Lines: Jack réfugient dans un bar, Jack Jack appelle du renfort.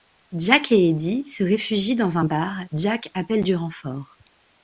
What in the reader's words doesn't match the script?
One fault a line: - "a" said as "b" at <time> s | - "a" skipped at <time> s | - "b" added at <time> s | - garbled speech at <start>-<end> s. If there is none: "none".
- "et Eddie se" added at 0.7 s
- "Jack" skipped at 3.1 s